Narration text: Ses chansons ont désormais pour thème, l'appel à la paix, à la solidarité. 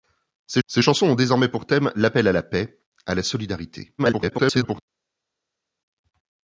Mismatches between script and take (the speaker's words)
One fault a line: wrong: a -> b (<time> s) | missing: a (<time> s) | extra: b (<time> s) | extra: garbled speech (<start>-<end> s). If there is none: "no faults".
extra: ses (0.7 s)
extra: garbled speech (4.0-4.8 s)